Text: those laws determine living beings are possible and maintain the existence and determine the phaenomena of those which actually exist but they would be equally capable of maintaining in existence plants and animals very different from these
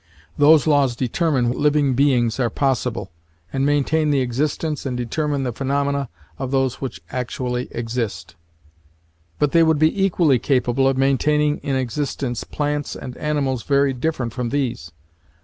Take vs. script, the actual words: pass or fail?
pass